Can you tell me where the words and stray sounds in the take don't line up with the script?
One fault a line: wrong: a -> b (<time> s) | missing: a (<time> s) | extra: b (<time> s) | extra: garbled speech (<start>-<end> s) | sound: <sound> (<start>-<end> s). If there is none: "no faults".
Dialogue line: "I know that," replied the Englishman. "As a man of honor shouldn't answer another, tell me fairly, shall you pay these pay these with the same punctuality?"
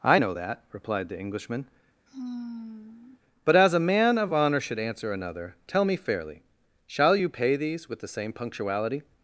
sound: sigh (2.1-3.2 s)
extra: But (3.4 s)
wrong: shouldn't -> should (4.6 s)
missing: pay these (7.9 s)